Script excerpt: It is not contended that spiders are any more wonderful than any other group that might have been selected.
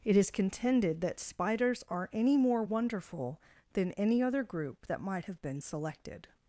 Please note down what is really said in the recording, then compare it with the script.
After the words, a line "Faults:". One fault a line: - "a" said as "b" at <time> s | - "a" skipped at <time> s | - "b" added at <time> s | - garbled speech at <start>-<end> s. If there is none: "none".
It is contended that spiders are any more wonderful than any other group that might have been selected.
Faults:
- "not" skipped at 0.3 s